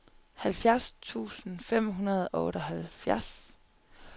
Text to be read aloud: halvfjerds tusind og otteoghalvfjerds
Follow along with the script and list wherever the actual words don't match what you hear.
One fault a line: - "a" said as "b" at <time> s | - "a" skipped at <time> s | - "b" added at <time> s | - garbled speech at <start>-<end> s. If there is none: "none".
- "fem hundrede" added at 1.6 s